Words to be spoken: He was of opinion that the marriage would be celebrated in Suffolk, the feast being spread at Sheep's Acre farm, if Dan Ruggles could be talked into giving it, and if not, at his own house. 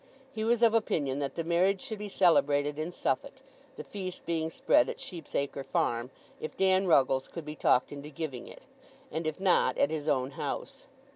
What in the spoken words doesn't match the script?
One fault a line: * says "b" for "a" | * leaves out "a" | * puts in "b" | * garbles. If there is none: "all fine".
* says "should" for "would"